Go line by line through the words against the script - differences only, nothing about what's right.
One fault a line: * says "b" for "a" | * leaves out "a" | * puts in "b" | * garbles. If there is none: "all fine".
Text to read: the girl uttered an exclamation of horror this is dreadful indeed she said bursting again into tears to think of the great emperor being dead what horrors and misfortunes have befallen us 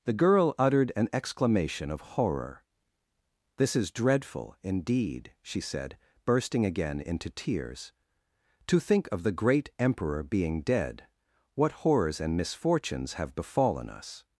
all fine